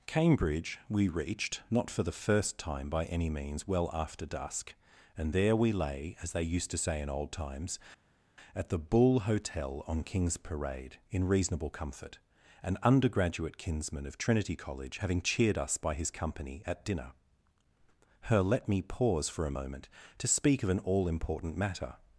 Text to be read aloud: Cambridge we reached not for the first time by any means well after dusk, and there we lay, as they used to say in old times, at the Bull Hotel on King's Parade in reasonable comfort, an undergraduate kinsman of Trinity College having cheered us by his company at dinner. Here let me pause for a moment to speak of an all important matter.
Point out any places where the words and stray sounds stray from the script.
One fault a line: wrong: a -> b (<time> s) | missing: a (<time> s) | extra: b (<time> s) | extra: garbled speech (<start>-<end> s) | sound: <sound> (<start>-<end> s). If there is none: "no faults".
wrong: Here -> Her (18.3 s)